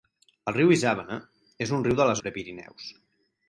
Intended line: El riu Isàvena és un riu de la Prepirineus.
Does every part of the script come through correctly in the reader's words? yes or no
yes